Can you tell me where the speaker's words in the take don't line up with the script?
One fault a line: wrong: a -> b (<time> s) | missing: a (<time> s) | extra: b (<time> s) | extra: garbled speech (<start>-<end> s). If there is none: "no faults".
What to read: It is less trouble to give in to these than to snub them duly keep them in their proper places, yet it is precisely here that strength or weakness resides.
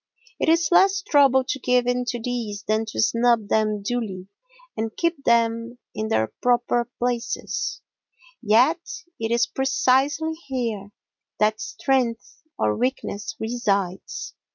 extra: and (4.8 s)